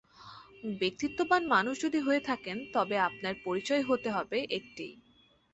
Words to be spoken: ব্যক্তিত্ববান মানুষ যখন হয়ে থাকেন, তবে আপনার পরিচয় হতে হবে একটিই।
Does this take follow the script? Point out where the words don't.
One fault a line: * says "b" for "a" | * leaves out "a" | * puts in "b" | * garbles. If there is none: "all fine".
* says "যদি" for "যখন"